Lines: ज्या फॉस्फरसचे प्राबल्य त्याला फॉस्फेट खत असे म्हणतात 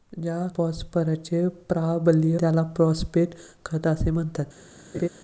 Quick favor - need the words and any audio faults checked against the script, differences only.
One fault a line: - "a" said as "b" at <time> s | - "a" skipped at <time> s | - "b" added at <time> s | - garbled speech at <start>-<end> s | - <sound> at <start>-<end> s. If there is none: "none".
- laugh at 4.9-5.1 s